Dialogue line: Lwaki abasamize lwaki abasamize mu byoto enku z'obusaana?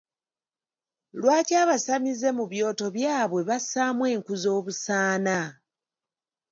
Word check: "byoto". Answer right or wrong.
wrong